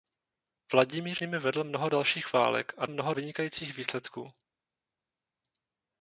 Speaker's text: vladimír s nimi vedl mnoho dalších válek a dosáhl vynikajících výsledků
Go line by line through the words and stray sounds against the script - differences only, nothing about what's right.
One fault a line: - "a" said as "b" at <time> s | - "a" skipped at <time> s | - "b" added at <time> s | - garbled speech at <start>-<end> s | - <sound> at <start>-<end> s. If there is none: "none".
- "s" skipped at 1.2 s
- "dosáhl" said as "mnoho" at 2.9 s